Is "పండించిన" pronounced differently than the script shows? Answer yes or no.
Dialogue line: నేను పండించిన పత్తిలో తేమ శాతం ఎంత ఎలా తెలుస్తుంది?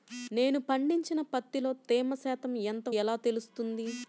no